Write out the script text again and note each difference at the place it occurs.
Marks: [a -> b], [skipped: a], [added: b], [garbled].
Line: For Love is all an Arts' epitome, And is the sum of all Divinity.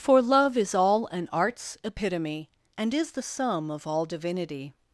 For Love is all an Arts' epitome, And is the sum of all Divinity.